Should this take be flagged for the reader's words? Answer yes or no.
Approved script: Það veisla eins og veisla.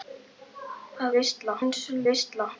no